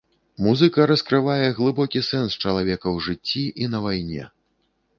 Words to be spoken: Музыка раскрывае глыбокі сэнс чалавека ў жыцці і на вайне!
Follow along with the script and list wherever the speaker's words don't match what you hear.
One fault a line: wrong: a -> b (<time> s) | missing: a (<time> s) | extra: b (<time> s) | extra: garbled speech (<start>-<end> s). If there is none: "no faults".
no faults